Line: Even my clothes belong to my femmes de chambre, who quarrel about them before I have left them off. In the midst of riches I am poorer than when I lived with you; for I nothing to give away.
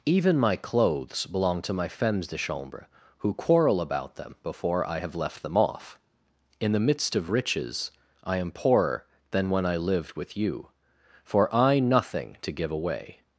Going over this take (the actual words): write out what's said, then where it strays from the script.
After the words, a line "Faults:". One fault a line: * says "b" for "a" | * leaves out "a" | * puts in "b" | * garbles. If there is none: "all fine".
Even my clothes belong to my femmes de chambre, who quarrel about them before I have left them off. In the midst of riches I am poorer than when I lived with you; for I nothing to give away.
Faults:
all fine